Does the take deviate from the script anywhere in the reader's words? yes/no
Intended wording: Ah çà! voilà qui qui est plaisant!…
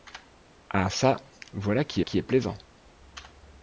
no